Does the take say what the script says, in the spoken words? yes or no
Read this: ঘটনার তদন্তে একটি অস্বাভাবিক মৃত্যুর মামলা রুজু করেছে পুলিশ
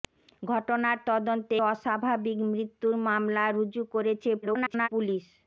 no